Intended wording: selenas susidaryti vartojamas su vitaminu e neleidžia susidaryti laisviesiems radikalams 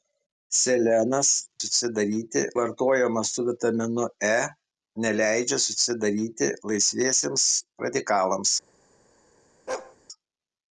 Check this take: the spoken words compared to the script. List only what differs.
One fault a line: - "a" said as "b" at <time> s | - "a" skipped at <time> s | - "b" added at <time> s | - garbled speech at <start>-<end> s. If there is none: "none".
none